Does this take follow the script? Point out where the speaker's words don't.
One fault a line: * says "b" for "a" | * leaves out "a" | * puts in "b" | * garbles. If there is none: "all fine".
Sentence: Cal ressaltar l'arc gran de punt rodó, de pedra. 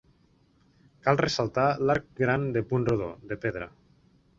all fine